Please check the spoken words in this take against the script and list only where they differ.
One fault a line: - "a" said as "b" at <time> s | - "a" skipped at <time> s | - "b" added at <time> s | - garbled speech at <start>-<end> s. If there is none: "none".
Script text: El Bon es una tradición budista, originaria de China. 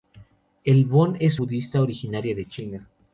- "una tradición" skipped at 1.4 s